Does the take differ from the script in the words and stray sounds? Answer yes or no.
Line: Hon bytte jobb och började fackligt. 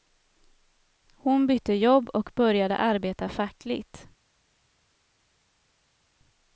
yes